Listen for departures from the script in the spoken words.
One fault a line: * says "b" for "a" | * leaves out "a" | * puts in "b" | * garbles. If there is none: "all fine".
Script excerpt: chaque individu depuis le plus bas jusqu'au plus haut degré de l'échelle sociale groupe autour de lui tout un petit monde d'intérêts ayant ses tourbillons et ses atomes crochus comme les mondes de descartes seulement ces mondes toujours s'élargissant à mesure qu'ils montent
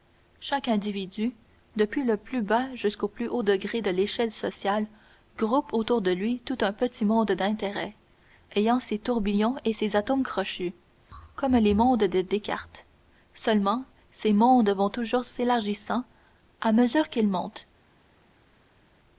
* puts in "vont"